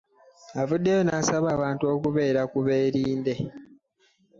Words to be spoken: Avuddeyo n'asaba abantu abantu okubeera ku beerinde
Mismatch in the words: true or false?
true